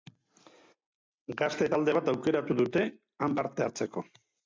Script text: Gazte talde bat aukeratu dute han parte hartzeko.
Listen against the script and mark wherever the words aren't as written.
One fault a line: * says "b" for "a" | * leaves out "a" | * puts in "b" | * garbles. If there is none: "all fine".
all fine